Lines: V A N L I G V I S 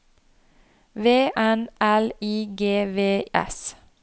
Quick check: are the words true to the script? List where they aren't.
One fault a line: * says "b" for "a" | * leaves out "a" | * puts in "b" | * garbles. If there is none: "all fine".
* leaves out "A"
* leaves out "I"